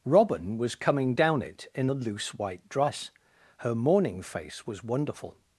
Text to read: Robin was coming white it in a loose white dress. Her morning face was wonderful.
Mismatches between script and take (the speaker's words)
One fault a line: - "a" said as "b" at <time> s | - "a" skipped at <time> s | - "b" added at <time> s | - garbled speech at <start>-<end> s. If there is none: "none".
- "white" said as "down" at 1.1 s